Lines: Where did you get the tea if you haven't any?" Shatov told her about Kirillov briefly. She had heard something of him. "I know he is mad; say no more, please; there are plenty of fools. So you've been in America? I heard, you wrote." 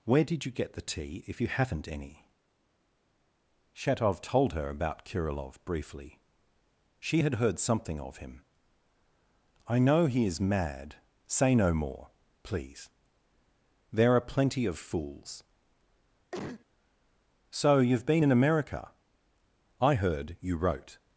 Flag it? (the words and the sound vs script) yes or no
yes